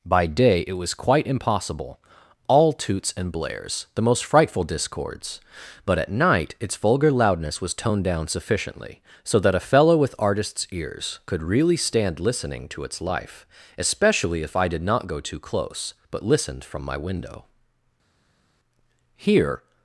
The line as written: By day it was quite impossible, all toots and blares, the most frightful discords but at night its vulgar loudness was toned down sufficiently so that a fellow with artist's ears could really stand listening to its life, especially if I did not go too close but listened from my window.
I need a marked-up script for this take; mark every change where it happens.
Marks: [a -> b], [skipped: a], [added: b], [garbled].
By day it was quite impossible, all toots and blares, the most frightful discords but at night its vulgar loudness was toned down sufficiently so that a fellow with artist's ears could really stand listening to its life, especially if I did not go too close but listened from my window. [added: Here]